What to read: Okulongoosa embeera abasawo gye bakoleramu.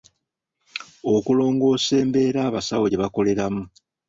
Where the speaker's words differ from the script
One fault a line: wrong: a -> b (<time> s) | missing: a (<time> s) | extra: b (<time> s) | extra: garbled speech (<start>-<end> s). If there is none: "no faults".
no faults